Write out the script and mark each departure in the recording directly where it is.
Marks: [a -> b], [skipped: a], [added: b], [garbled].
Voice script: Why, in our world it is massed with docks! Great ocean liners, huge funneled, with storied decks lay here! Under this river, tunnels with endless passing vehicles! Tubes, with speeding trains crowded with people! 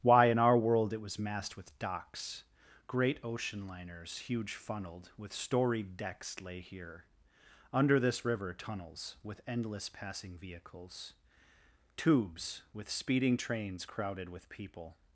Why, in our world it [is -> was] massed with docks! Great ocean liners, huge funneled, with storied decks lay here! Under this river, tunnels with endless passing vehicles! Tubes, with speeding trains crowded with people!